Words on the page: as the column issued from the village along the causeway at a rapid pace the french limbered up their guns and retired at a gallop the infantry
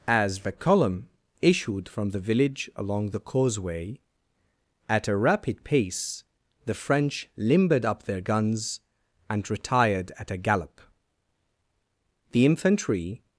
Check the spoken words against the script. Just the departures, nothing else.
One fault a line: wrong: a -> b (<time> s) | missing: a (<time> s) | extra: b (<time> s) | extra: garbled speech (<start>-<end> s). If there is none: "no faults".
no faults